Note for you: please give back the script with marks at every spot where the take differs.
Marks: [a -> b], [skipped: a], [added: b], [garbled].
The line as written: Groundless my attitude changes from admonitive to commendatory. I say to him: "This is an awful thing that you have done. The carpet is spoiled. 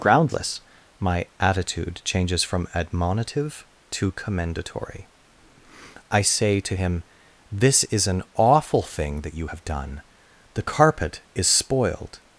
Groundless my attitude changes from admonitive to commendatory. I say to him: "This is an awful thing that you have done. The carpet is spoiled.